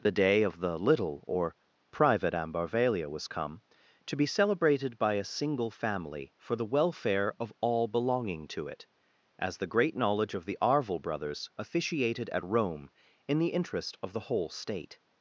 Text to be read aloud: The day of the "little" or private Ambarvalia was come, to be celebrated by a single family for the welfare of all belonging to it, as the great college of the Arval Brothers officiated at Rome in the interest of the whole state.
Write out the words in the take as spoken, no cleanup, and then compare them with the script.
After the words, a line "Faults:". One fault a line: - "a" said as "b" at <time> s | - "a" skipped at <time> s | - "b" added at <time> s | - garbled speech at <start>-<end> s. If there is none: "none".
The day of the "little" or private Ambarvalia was come, to be celebrated by a single family for the welfare of all belonging to it, as the great knowledge of the Arval Brothers officiated at Rome in the interest of the whole state.
Faults:
- "college" said as "knowledge" at 10.0 s